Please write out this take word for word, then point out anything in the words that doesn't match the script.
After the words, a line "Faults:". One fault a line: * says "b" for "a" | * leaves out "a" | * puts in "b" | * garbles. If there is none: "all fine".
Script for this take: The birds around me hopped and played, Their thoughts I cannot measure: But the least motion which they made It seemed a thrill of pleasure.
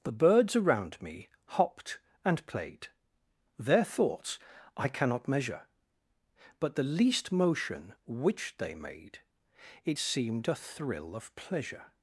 The birds around me hopped and played, Their thoughts I cannot measure: But the least motion which they made It seemed a thrill of pleasure.
Faults:
all fine